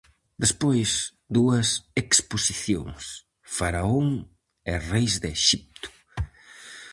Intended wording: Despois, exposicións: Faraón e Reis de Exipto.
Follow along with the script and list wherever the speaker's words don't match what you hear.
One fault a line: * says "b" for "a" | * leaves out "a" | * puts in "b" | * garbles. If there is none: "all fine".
* puts in "dúas"